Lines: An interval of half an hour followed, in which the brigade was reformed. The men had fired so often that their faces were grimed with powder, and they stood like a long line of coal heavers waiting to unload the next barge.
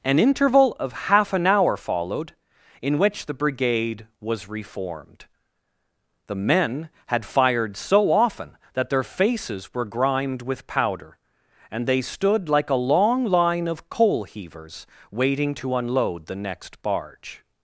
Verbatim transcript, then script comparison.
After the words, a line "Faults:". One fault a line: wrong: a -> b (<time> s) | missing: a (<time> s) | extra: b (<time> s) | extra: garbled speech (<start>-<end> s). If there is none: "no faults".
An interval of half an hour followed, in which the brigade was reformed. The men had fired so often that their faces were grimed with powder, and they stood like a long line of coal heavers waiting to unload the next barge.
Faults:
no faults